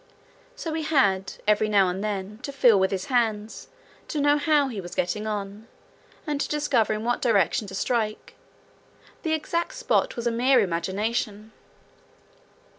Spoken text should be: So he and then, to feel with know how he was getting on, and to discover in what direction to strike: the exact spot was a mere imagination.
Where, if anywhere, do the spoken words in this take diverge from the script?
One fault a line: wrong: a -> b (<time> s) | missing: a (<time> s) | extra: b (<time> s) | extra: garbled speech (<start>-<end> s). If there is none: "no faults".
extra: had every now (0.8 s)
extra: his hands to (2.9 s)